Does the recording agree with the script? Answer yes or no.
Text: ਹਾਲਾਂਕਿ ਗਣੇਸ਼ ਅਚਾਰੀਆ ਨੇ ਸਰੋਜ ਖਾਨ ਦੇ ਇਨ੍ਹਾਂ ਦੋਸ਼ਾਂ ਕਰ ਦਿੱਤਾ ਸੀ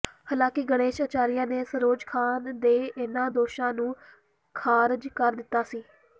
no